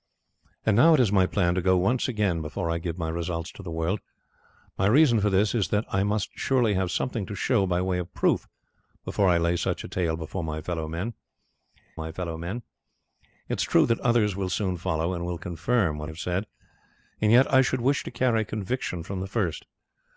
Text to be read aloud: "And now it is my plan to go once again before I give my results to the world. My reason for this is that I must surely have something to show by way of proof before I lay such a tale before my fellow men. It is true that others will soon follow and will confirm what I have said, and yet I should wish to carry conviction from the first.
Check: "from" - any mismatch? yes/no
no